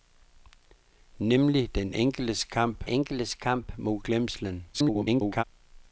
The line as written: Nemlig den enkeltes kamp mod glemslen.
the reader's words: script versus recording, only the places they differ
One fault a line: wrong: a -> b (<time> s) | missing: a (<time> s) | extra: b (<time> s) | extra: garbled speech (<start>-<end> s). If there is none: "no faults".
extra: enkeltes kamp (2.9 s)
extra: garbled speech (4.7-5.4 s)